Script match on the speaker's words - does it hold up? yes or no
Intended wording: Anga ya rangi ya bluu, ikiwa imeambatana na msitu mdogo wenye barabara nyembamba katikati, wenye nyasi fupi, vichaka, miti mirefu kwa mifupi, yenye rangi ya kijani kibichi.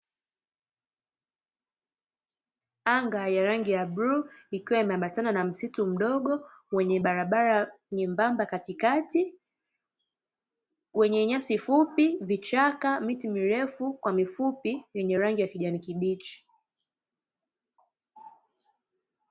yes